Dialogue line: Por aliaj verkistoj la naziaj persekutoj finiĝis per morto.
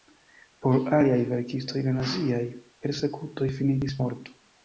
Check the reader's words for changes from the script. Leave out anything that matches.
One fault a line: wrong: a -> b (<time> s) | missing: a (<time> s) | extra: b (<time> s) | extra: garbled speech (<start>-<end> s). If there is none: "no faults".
missing: per (4.0 s)